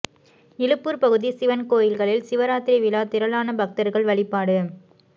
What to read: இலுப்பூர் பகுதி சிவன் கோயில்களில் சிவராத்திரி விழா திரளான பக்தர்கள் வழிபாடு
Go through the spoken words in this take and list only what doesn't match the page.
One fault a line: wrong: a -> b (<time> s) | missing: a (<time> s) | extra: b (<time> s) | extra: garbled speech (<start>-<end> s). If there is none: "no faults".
no faults